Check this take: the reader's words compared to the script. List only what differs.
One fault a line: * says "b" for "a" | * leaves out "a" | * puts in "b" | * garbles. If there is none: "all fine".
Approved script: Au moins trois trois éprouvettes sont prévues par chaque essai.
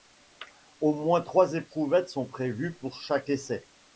* leaves out "trois"
* says "pour" for "par"